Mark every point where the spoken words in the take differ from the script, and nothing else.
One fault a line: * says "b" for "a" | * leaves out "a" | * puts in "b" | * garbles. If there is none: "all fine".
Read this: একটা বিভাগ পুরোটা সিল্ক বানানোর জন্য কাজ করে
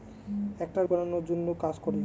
* leaves out "বিভাগ পুরোটা সিল্ক"